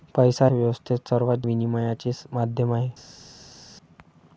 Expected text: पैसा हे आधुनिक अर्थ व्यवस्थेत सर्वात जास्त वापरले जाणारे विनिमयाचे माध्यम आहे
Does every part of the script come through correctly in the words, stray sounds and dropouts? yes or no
no